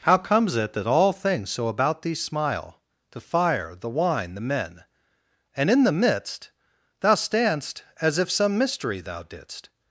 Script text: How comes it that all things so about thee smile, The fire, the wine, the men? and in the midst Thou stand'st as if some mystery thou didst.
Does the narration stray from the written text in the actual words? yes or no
no